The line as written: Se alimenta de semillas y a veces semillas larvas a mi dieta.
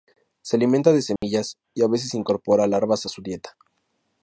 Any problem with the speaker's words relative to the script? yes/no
yes